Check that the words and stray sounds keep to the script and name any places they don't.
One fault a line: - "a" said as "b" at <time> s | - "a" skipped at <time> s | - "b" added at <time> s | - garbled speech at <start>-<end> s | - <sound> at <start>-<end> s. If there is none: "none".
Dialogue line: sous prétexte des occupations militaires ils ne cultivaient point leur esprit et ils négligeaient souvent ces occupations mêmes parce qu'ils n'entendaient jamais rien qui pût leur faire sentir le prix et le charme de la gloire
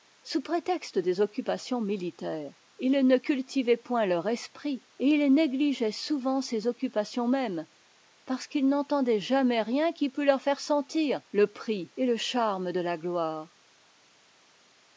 none